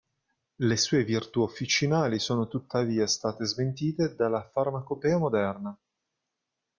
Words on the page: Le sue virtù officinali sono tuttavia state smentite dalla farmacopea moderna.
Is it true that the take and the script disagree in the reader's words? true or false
false